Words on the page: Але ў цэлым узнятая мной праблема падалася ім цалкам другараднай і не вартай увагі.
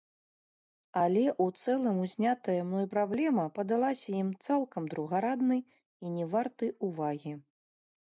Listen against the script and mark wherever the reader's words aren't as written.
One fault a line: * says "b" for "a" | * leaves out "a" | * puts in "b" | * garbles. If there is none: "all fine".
all fine